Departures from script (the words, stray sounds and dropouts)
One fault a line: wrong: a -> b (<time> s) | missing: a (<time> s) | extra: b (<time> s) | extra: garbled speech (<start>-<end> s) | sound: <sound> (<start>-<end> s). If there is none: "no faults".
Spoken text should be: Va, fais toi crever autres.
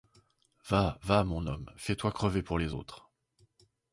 extra: va mon homme (1.0 s)
extra: pour les (2.4 s)